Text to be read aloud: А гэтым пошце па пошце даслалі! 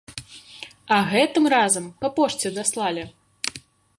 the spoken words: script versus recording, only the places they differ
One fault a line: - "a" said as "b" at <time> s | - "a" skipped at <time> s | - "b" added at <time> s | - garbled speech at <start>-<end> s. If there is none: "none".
- "пошце" said as "разам" at 1.6 s